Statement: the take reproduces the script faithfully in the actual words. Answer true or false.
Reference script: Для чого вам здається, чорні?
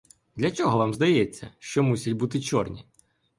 false